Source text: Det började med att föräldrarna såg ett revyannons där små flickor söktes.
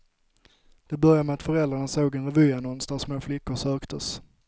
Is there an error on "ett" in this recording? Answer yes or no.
yes